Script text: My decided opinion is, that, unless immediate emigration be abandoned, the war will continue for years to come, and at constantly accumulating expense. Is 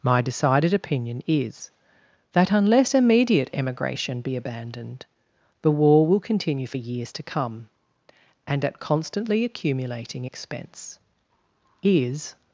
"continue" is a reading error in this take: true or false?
false